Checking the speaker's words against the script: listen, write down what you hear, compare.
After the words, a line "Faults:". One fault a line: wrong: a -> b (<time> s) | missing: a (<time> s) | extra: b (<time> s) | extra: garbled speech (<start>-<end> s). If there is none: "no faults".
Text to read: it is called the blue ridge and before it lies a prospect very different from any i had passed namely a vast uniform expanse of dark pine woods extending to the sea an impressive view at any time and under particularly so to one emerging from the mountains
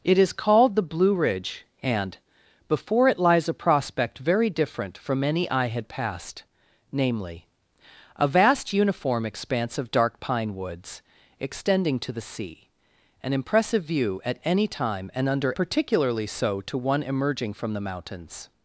it is called the blue ridge and before it lies a prospect very different from any i had passed namely a vast uniform expanse of dark pine woods extending to the sea an impressive view at any time and under particularly so to one emerging from the mountains
Faults:
no faults